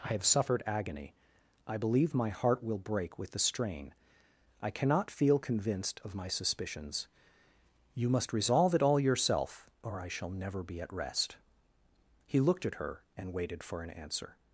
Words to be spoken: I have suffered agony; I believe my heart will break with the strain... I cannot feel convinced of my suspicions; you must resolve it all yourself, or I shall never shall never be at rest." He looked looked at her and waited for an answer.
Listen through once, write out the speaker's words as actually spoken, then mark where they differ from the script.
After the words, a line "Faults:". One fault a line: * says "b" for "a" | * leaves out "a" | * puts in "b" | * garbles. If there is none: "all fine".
I have suffered agony; I believe my heart will break with the strain... I cannot feel convinced of my suspicions; you must resolve it all yourself, or I shall never be at rest." He looked at her and waited for an answer.
Faults:
* leaves out "shall never"
* leaves out "looked"